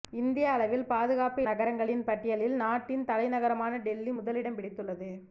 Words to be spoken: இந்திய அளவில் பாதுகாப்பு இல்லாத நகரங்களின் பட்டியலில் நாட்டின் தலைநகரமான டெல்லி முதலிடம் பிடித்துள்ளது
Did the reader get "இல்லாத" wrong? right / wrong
wrong